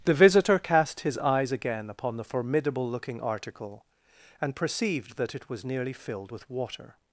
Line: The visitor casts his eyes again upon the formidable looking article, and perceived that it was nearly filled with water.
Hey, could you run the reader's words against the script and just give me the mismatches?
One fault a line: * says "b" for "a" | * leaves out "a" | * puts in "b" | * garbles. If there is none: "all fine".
* says "cast" for "casts"